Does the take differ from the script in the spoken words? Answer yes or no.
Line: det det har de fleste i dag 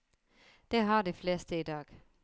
yes